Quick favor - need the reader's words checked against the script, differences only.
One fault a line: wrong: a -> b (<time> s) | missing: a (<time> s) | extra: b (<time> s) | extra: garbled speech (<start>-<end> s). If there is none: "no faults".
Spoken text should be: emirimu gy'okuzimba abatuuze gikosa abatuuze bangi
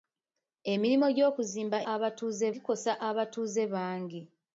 no faults